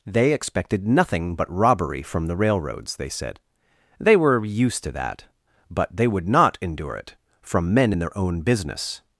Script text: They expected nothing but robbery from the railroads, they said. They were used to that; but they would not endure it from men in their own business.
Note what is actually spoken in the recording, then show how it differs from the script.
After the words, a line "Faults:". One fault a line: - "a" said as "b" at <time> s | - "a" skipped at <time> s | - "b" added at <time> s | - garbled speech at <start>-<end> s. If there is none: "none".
They expected nothing but robbery from the railroads, they said. They were used to that; but they would not endure it from men in their own business.
Faults:
none